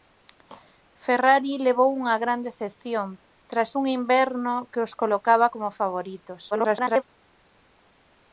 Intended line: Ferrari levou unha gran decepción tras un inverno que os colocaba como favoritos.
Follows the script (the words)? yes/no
no